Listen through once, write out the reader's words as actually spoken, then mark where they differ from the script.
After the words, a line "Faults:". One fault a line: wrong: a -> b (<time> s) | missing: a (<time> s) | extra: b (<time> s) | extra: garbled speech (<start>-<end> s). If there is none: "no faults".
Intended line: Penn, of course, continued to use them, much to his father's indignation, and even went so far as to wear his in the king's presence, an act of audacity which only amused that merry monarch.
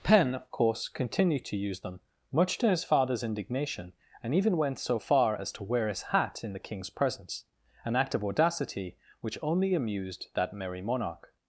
Penn, of course, continued to use them, much to his father's indignation, and even went so far as to wear his hat in the king's presence, an act of audacity which only amused that merry monarch.
Faults:
extra: hat (6.1 s)